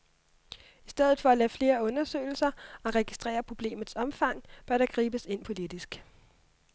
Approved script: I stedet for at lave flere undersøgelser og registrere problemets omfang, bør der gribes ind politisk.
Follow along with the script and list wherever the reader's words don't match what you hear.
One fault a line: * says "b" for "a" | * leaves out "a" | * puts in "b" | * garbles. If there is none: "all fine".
all fine